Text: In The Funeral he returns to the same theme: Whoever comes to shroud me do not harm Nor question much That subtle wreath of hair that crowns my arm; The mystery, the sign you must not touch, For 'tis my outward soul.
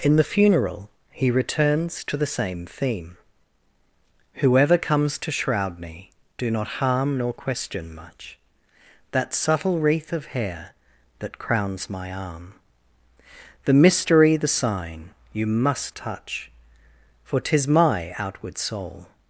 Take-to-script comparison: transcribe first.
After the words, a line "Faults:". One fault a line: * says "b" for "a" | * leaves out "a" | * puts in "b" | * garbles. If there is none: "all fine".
In The Funeral he returns to the same theme: Whoever comes to shroud me do not harm Nor question much That subtle wreath of hair that crowns my arm; The mystery, the sign you must touch, For 'tis my outward soul.
Faults:
* leaves out "not"